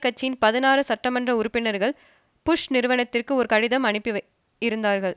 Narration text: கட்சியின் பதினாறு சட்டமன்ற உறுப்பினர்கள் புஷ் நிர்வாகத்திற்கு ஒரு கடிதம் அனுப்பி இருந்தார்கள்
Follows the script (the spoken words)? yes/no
yes